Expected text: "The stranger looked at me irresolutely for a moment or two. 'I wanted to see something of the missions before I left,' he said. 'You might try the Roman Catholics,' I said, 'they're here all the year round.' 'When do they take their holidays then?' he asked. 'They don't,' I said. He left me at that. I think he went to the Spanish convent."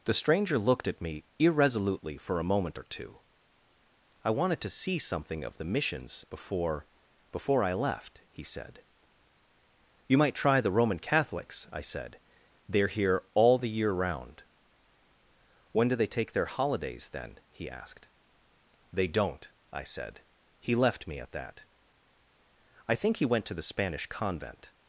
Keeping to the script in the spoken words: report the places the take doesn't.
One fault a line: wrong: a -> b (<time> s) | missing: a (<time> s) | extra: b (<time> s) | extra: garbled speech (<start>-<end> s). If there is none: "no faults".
extra: before (7.3 s)